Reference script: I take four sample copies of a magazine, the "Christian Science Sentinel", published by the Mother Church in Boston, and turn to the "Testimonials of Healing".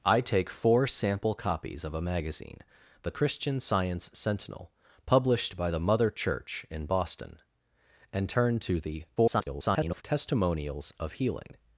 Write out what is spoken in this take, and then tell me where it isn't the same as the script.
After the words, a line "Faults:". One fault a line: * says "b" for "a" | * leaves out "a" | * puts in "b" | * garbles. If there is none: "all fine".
I take four sample copies of a magazine, the "Christian Science Sentinel", published by the Mother Church in Boston, and turn to the [garbled] "Testimonials of Healing".
Faults:
* garbles